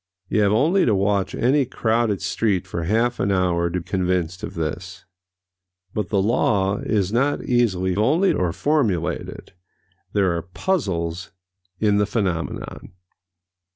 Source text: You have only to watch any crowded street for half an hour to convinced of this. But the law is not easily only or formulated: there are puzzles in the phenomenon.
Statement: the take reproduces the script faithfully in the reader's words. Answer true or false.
true